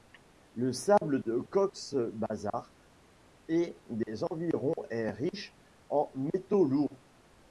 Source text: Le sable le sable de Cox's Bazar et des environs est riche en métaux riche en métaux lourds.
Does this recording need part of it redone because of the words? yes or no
yes